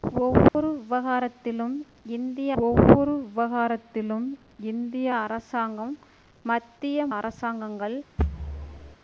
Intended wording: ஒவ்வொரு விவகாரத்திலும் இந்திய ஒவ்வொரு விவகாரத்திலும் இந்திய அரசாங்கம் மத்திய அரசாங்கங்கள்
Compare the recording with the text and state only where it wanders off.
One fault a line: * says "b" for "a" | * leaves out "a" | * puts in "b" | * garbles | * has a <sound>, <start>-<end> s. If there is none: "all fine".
* has a dropout, 0.5-0.5 s
* has a thud, 8.2-9.0 s